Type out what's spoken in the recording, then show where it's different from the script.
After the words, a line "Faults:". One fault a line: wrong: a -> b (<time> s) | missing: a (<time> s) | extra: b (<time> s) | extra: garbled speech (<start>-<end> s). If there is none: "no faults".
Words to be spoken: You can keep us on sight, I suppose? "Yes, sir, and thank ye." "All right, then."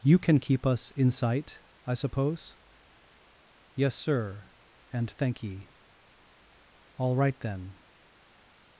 You can keep us in sight, I suppose? "Yes, sir, and thank ye." "All right, then."
Faults:
wrong: on -> in (0.9 s)